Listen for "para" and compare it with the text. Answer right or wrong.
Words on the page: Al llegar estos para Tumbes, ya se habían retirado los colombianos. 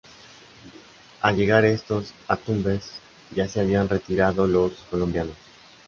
wrong